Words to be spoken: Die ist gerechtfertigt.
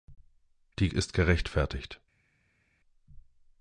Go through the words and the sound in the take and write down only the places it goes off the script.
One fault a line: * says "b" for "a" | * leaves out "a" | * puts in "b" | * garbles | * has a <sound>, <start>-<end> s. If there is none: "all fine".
all fine